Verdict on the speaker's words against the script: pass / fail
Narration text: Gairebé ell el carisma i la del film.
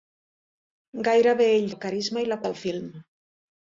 pass